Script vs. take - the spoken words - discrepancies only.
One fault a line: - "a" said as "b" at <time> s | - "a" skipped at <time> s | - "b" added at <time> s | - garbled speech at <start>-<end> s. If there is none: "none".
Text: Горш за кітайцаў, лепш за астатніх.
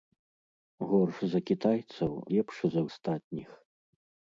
none